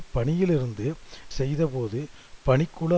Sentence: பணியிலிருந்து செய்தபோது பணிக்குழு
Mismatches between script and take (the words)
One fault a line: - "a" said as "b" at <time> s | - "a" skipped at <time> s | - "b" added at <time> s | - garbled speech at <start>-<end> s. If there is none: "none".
none